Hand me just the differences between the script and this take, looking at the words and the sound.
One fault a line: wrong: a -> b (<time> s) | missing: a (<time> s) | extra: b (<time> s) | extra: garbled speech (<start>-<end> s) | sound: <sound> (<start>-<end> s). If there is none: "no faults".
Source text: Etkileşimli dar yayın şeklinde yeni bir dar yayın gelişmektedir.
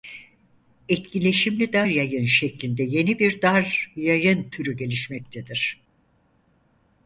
extra: türü (4.5 s)